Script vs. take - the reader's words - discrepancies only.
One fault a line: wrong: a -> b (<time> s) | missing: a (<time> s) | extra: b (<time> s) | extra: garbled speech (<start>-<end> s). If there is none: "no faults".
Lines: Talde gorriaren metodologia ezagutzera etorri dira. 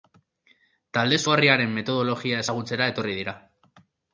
no faults